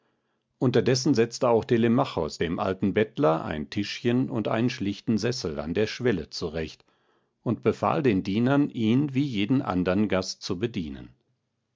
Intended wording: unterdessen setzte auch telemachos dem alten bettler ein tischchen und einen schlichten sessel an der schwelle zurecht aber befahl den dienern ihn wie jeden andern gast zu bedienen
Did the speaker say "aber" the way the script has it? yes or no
no